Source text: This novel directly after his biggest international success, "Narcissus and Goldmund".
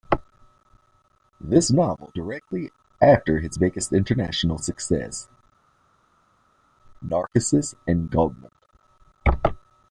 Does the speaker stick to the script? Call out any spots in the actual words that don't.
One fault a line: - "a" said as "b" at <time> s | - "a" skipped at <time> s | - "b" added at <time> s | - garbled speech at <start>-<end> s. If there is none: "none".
none